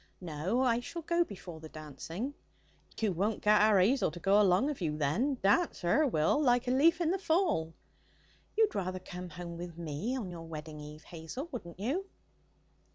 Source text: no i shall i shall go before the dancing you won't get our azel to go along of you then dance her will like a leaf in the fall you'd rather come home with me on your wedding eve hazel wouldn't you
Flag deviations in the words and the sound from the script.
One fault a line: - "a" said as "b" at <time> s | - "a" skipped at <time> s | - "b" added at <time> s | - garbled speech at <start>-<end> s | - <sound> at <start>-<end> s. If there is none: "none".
- "i shall" skipped at 1.0 s
- dropout at 2.9-3.0 s